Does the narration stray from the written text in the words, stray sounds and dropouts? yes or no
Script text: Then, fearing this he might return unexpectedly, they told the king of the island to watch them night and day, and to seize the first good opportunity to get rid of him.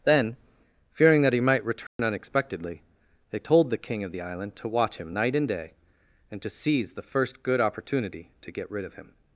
yes